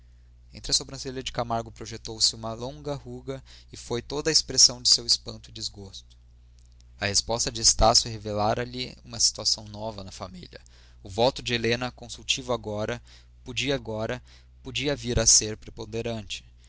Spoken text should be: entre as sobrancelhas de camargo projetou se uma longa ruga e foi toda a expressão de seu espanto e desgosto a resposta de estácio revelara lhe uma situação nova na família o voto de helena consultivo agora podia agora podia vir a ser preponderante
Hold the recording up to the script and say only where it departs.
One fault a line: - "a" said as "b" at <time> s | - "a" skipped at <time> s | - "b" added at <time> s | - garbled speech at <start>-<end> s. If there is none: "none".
none